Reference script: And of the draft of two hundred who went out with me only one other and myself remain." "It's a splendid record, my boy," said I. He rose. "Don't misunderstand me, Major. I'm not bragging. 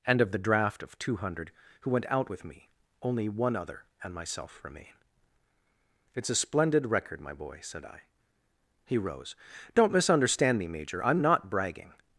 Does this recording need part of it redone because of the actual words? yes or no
no